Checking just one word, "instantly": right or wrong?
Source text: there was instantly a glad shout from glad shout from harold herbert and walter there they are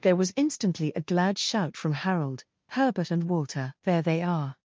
right